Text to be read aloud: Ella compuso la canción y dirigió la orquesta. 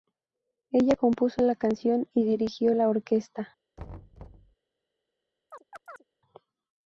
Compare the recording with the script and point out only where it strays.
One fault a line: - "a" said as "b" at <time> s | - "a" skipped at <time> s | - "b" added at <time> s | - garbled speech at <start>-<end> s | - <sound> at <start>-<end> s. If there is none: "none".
- thud at 3.8-4.6 s
- chirp at 5.5-6.0 s